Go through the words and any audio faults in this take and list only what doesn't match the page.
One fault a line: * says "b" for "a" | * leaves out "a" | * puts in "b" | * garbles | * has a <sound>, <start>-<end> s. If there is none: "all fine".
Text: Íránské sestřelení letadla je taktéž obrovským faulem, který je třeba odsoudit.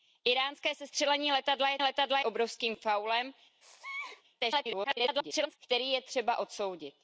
* says "letadla" for "taktéž"
* has a sneeze, 3.6-4.2 s
* garbles